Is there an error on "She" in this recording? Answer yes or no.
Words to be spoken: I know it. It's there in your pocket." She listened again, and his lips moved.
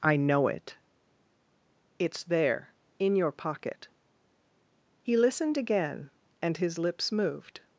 yes